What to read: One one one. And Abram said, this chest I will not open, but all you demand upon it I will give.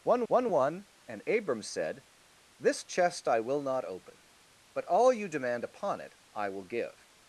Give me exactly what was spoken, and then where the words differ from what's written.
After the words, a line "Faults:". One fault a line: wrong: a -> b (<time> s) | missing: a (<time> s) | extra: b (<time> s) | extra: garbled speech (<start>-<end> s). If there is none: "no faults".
One one one. And Abram said, this chest I will not open, but all you demand upon it I will give.
Faults:
no faults